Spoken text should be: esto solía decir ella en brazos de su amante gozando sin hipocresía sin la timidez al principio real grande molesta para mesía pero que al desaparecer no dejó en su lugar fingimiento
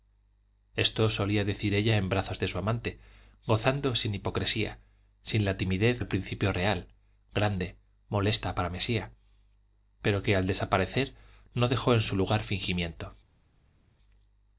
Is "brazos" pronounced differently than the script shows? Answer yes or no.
no